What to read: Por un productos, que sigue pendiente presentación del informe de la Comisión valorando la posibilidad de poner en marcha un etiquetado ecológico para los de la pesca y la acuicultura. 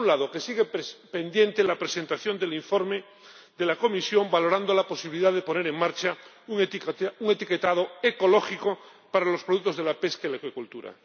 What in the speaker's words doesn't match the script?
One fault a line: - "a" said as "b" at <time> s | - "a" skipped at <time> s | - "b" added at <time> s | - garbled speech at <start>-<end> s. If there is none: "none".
- "productos" said as "lado" at 0.2 s
- "la" added at 1.6 s
- "productos" added at 9.4 s